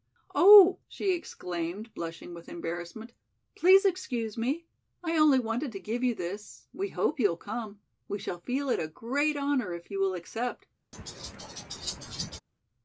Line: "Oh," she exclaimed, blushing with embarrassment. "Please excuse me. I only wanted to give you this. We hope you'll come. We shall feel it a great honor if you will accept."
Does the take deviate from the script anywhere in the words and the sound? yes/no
yes